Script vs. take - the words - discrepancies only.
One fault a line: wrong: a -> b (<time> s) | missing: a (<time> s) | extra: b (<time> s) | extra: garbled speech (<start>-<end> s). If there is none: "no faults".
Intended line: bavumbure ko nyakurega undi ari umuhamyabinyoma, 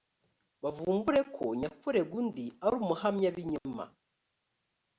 no faults